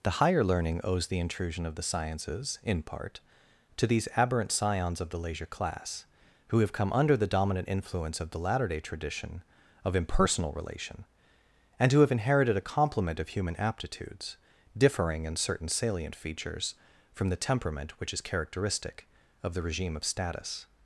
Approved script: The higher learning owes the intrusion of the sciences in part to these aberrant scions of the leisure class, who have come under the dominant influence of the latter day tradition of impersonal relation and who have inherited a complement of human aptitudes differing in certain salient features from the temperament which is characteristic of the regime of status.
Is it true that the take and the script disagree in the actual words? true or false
false